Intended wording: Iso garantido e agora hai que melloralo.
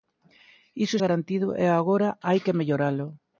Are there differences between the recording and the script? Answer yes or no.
no